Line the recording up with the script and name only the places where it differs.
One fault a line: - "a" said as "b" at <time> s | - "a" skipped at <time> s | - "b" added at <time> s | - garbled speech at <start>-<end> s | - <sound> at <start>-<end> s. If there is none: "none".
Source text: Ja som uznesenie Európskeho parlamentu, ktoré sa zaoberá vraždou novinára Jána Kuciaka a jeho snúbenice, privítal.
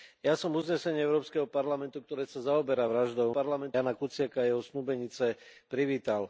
- "novinára" said as "parlamentu" at 3.3 s